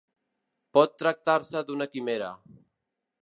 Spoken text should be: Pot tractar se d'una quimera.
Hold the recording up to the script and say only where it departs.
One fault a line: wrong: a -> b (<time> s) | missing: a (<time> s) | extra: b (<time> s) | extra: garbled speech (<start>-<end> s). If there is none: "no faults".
no faults